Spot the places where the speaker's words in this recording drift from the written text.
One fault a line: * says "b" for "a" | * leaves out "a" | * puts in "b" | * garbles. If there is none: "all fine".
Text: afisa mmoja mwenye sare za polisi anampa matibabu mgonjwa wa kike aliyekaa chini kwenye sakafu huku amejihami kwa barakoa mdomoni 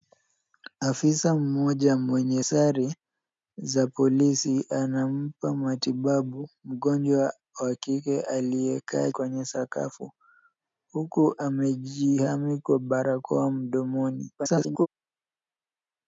* leaves out "chini"
* garbles